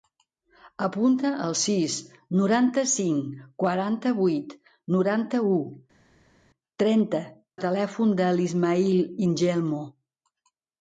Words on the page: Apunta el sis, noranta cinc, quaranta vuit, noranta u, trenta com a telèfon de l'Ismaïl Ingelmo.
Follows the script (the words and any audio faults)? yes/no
no